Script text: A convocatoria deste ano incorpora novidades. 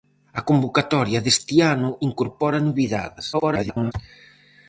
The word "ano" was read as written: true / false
true